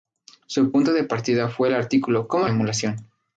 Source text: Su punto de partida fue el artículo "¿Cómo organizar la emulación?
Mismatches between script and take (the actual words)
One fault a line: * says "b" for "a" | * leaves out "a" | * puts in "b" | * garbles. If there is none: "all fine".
* leaves out "organizar la"